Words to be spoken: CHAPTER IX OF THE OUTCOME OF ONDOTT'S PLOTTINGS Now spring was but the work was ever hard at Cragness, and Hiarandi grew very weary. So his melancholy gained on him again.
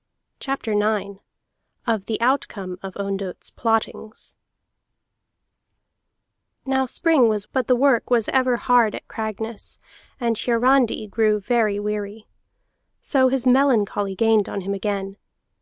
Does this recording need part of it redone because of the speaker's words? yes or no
no